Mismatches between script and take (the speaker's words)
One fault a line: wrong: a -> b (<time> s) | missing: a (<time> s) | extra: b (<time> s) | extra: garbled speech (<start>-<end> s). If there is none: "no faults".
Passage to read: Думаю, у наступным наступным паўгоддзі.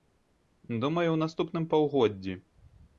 missing: наступным (1.7 s)